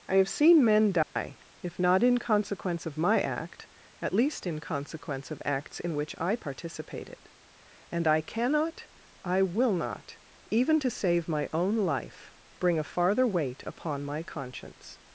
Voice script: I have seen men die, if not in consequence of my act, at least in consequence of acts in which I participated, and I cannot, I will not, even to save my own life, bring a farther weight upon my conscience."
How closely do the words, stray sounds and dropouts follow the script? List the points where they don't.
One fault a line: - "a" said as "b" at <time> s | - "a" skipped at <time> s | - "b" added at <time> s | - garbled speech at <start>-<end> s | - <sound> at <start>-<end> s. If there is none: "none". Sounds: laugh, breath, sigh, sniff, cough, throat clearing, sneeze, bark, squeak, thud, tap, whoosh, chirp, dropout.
- dropout at 1.0-1.2 s